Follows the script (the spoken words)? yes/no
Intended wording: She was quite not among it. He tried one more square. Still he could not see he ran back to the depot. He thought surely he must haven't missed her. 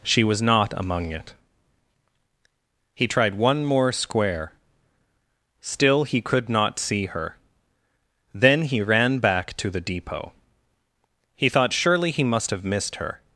no